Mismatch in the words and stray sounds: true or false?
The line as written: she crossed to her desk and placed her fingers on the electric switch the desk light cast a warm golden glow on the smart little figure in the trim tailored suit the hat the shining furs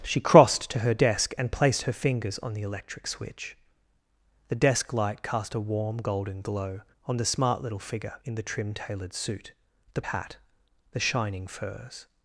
false